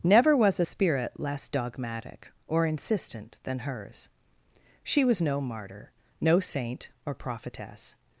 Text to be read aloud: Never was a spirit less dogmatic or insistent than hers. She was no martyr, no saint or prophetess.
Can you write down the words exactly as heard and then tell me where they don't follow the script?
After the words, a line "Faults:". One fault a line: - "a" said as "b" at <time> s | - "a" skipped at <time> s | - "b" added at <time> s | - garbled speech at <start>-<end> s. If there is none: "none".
Never was a spirit less dogmatic or insistent than hers. She was no martyr, no saint or prophetess.
Faults:
none